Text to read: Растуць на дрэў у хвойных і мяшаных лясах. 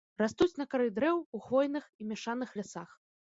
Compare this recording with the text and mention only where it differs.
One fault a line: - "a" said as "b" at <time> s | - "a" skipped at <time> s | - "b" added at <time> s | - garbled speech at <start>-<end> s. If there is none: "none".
- "кары" added at 0.7 s